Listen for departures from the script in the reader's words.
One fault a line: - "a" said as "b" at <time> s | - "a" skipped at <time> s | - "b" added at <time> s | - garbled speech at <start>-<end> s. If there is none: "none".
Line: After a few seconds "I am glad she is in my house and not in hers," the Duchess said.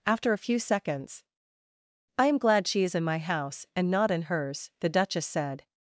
none